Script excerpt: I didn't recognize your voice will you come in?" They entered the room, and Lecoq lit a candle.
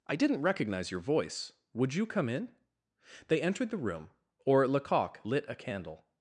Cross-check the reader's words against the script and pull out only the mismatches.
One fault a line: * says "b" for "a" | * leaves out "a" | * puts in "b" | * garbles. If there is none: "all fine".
* says "would" for "will"
* says "or" for "and"